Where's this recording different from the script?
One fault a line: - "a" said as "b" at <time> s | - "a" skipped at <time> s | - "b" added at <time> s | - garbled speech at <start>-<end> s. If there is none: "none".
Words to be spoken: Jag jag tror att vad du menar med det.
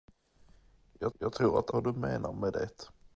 none